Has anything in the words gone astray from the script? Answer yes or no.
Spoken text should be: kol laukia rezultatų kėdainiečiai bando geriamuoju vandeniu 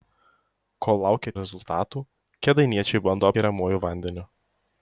no